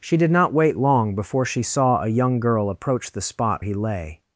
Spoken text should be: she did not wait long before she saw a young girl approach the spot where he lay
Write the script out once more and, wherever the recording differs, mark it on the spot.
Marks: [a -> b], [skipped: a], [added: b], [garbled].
she did not wait long before she saw a young girl approach the spot [skipped: where] he lay